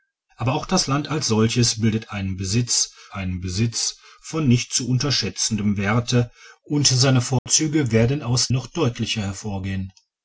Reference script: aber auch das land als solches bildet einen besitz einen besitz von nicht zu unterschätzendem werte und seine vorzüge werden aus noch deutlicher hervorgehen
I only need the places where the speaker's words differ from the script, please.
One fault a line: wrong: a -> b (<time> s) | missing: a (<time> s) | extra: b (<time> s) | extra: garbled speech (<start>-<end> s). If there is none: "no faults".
no faults